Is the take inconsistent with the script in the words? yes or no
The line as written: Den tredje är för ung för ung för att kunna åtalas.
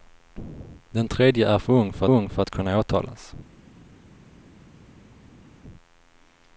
no